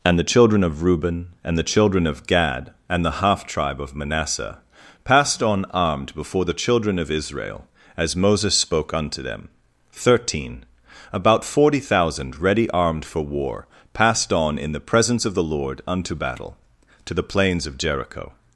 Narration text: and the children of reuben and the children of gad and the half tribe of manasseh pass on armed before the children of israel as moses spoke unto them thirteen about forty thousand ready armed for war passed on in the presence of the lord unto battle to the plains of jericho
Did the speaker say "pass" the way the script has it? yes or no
no